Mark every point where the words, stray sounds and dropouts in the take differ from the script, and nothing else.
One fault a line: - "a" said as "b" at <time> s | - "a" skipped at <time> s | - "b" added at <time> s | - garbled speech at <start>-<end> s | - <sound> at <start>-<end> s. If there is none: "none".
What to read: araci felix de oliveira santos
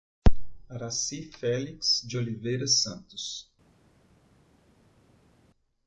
none